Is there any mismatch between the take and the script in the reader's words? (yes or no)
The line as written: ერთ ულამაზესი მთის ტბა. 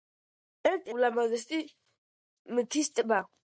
no